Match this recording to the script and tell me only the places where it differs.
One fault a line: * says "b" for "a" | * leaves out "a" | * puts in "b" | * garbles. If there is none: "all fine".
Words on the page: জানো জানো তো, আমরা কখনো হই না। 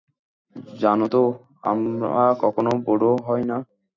* leaves out "জানো"
* puts in "বুড়ো"